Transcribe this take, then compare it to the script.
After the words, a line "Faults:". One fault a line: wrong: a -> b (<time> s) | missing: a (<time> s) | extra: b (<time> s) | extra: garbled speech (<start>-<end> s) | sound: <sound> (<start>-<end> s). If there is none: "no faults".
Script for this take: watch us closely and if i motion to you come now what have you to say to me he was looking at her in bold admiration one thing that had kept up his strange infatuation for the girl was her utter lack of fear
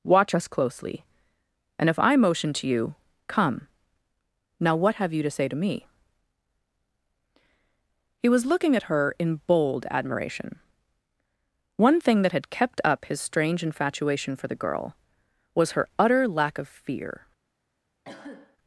watch us closely and if i motion to you come now what have you to say to me he was looking at her in bold admiration one thing that had kept up his strange infatuation for the girl was her utter lack of fear
Faults:
sound: cough (18.0-18.6 s)